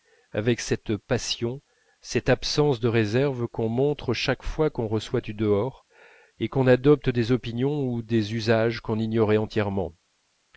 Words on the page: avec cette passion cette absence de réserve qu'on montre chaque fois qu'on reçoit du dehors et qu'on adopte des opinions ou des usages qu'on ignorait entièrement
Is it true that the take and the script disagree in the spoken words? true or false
false